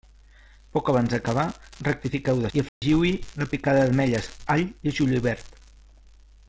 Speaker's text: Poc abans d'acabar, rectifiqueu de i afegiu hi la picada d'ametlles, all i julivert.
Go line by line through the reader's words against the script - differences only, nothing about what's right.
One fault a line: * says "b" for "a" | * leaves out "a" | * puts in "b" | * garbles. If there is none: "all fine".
all fine